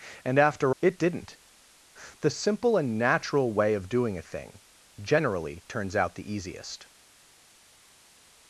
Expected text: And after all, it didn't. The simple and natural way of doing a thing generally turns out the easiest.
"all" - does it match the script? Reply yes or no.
no